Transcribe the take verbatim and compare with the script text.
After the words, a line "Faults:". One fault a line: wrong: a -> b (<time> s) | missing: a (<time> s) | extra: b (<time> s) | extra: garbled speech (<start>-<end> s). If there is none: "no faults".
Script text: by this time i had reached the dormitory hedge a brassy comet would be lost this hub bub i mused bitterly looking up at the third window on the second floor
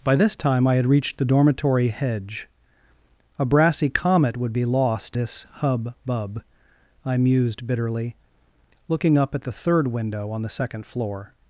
by this time i had reached the dormitory hedge a brassy comet would be lost this hub bub i mused bitterly looking up at the third window on the second floor
Faults:
no faults